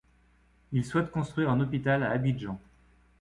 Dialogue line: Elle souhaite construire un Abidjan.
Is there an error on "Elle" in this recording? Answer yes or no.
yes